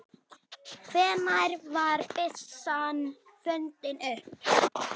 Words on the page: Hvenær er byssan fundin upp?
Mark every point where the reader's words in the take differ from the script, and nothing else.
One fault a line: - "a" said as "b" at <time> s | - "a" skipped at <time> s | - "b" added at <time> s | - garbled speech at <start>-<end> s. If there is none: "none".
- "er" said as "var" at 1.8 s